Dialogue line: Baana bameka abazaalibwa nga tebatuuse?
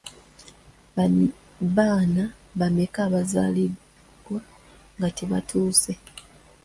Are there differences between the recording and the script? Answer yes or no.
no